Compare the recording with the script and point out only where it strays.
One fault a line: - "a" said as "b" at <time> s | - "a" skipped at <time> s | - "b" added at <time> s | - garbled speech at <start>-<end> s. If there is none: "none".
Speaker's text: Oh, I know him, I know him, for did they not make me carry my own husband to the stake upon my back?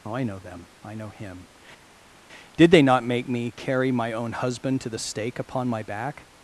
- "him" said as "them" at 0.4 s
- "for" skipped at 1.5 s